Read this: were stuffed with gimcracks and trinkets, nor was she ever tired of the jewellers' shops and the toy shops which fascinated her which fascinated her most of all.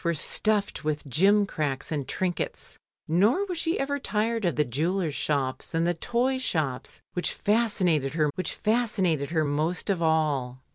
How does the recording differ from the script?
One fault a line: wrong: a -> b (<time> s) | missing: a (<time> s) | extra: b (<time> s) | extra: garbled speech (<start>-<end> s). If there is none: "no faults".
no faults